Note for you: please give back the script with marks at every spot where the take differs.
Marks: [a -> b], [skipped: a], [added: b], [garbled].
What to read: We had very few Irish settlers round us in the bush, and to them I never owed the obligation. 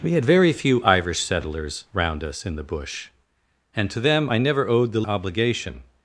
We had very few Irish settlers round us in the bush, and to them I never owed the obligation.